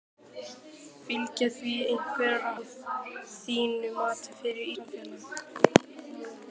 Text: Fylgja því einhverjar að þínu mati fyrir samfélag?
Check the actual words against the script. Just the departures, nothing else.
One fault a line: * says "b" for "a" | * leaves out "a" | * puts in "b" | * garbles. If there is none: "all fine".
all fine